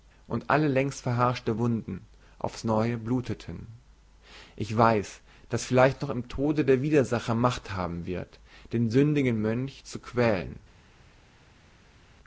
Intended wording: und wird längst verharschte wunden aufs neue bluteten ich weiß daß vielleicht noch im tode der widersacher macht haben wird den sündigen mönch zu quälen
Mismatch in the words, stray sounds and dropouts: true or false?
true